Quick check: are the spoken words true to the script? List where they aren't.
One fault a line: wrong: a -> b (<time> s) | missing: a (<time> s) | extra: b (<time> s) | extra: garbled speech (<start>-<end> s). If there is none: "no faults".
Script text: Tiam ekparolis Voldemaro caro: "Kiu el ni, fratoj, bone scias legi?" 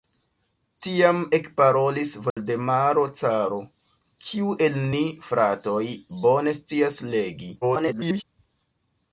extra: garbled speech (7.6-8.2 s)